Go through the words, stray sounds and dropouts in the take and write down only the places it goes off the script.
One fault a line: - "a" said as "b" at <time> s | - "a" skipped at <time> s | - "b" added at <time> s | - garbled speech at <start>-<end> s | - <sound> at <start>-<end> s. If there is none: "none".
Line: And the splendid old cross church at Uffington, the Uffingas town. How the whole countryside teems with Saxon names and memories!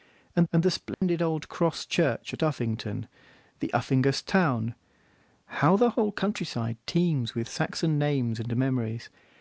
- "and" added at 0.5 s
- dropout at 0.9-1.0 s